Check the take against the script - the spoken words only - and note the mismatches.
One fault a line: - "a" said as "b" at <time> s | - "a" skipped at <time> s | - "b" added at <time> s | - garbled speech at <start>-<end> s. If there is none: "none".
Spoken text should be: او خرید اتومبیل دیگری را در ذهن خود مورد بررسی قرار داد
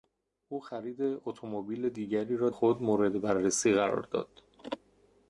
- "در ذهن" skipped at 2.5 s